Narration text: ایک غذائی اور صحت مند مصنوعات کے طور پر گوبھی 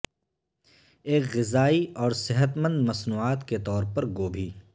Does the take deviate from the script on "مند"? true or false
false